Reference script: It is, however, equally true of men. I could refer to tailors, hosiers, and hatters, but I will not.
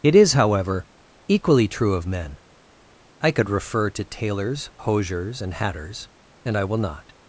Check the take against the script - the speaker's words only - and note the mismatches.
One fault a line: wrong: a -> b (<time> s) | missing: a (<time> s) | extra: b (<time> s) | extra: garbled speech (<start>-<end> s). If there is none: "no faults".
wrong: but -> and (6.5 s)